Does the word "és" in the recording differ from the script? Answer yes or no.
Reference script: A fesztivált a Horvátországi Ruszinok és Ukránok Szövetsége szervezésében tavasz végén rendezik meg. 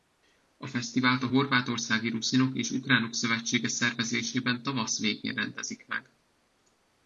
no